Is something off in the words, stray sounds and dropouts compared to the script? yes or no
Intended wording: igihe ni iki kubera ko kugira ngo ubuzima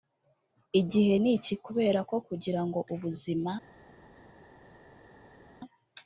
no